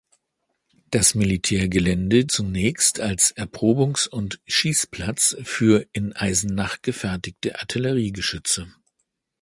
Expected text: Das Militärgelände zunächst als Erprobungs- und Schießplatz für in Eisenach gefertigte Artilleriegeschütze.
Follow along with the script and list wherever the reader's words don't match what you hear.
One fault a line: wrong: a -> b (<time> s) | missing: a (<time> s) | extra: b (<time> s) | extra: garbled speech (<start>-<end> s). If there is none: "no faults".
no faults